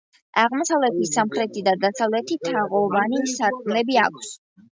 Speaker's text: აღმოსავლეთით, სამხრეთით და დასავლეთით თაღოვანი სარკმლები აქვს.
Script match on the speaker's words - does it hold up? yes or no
yes